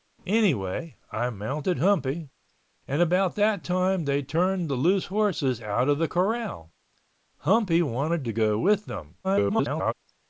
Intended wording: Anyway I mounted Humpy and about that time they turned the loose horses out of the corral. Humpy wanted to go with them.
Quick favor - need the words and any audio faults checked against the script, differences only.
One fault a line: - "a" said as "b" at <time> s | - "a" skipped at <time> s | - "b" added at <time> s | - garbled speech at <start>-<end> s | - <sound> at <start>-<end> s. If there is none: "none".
- garbled speech at 9.2-9.9 s